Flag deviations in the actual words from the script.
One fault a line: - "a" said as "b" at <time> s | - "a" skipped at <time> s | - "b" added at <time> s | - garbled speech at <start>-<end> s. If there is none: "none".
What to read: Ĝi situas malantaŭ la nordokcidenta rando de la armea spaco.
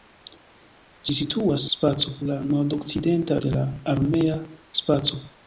- "malantaŭ" said as "spaco" at 1.8 s
- "rando" skipped at 3.4 s